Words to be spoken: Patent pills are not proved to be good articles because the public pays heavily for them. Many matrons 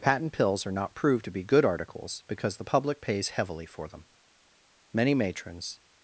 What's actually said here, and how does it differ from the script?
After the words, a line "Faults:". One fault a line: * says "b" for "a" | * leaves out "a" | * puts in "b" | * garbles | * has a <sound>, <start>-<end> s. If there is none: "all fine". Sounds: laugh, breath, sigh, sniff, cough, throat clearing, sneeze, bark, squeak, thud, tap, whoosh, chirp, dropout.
Patent pills are not proved to be good articles because the public pays heavily for them. Many matrons
Faults:
all fine